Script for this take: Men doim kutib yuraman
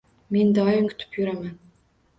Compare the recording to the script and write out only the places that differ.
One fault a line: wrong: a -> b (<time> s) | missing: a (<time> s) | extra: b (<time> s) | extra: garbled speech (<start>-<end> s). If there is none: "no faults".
no faults